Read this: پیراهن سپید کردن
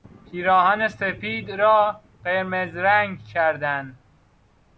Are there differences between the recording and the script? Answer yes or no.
yes